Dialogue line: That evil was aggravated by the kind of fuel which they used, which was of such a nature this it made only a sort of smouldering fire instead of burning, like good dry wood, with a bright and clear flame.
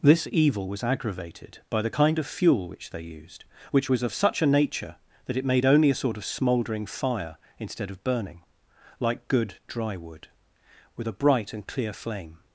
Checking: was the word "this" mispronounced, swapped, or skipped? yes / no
yes